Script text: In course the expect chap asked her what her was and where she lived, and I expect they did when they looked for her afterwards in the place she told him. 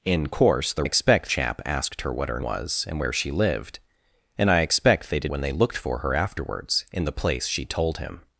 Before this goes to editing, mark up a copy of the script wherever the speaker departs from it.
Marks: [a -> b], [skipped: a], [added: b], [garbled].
In course the expect chap asked her what her was and where she lived, and I expect they did when they looked for her afterwards in the place she told him.